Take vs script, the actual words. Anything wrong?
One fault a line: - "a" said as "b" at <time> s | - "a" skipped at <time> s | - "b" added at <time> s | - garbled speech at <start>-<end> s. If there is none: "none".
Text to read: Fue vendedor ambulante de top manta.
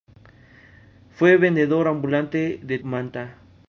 - "top" skipped at 2.8 s